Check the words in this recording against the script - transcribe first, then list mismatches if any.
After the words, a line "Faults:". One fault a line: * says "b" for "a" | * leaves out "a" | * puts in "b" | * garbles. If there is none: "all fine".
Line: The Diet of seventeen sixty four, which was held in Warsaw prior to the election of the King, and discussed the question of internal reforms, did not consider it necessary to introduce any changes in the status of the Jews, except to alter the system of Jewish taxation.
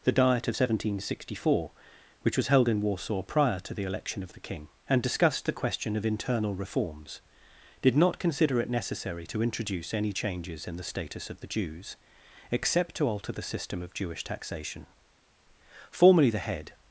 The Diet of seventeen sixty four, which was held in Warsaw prior to the election of the King, and discussed the question of internal reforms, did not consider it necessary to introduce any changes in the status of the Jews, except to alter the system of Jewish taxation. Formerly the head
Faults:
* puts in "Formerly the head"